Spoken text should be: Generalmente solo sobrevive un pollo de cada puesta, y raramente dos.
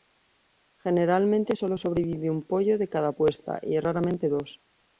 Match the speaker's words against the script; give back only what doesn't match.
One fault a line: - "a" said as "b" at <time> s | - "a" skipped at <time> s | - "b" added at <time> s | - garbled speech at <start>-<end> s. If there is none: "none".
none